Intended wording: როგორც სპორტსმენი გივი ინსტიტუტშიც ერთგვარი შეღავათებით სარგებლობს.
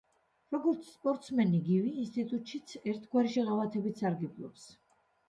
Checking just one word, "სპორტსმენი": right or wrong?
right